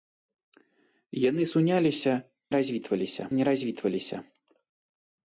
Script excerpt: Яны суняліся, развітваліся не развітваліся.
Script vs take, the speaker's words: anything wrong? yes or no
no